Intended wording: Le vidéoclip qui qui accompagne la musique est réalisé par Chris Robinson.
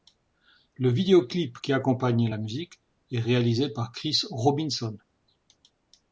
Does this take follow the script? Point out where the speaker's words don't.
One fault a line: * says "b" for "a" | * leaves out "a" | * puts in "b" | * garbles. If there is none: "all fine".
* leaves out "qui"